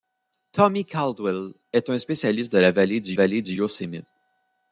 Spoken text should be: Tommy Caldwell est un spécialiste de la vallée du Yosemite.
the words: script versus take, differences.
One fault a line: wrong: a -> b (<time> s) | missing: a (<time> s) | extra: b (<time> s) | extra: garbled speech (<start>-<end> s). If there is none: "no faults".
extra: vallée du (3.1 s)